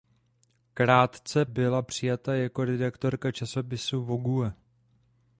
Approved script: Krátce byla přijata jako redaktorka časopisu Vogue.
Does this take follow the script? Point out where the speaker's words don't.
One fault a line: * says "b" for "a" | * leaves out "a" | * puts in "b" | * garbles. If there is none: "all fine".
all fine